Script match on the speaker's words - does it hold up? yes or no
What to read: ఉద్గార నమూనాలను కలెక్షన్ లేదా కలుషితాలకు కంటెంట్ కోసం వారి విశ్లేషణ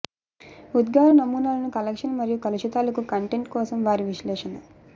no